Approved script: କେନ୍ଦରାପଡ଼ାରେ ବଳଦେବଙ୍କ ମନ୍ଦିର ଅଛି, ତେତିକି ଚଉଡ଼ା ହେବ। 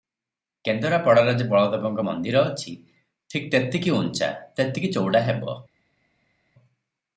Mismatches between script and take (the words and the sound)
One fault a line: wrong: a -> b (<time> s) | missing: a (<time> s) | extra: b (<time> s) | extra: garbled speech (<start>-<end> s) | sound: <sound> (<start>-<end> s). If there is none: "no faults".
extra: ଯେ (1.3 s)
extra: ଠିକ୍ ତେତିକି ଉଞ୍ଚା (3.3 s)